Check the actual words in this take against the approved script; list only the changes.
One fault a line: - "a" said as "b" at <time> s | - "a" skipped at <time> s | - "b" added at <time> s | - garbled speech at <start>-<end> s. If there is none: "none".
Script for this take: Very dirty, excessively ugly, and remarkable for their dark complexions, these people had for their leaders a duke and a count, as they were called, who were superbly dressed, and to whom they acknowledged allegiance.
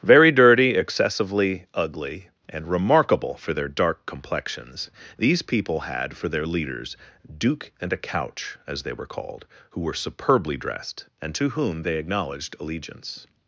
- "a" skipped at 7.0 s
- "count" said as "couch" at 8.0 s